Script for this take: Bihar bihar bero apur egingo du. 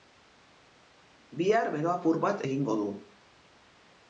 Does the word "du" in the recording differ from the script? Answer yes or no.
no